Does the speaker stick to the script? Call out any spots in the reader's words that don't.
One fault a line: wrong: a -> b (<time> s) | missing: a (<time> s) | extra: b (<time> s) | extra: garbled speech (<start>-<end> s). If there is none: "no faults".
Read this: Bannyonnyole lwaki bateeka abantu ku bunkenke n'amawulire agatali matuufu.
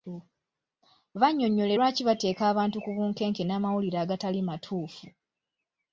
no faults